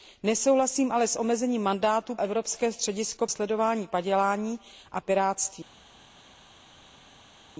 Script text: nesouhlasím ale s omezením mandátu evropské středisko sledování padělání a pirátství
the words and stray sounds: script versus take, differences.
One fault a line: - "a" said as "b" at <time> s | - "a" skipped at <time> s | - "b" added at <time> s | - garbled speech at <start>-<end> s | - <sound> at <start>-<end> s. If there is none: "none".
none